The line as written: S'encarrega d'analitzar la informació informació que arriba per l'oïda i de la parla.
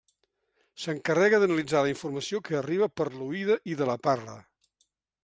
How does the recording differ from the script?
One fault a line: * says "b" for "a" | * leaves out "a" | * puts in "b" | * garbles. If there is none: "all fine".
* leaves out "informació"